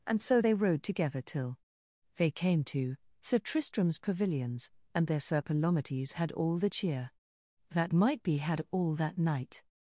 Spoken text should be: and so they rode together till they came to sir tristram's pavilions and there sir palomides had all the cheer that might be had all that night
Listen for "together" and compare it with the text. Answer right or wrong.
right